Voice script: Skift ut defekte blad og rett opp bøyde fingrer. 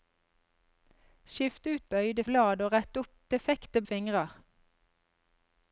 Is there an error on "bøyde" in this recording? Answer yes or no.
yes